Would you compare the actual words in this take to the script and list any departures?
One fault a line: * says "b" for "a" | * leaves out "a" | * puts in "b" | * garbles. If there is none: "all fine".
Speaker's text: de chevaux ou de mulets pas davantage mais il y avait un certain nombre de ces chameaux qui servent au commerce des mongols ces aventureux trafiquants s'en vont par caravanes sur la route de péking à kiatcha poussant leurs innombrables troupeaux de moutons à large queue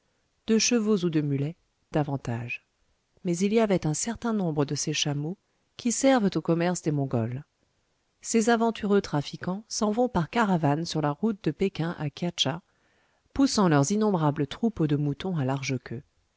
* leaves out "pas"